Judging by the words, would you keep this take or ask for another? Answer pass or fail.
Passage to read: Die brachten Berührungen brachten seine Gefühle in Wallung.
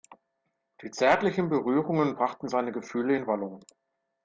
fail